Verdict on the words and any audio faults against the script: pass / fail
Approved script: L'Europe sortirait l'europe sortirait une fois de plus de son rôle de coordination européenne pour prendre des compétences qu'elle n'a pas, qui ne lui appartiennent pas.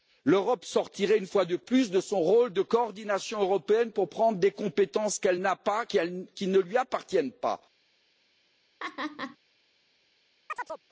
fail